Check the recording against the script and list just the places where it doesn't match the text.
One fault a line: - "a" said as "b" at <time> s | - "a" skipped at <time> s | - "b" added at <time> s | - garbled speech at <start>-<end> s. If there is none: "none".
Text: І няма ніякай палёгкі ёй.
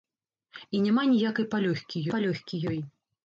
- "палёгкі" added at 2.1 s